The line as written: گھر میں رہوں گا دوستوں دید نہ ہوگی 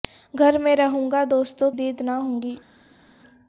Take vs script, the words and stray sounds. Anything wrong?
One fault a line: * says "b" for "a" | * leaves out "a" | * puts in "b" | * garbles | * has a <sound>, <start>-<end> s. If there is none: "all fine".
all fine